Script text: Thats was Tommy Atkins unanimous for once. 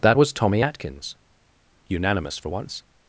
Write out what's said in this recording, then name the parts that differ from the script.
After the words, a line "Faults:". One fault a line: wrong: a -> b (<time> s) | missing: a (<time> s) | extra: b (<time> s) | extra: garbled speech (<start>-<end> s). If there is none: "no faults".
That was Tommy Atkins unanimous for once.
Faults:
wrong: Thats -> That (0.0 s)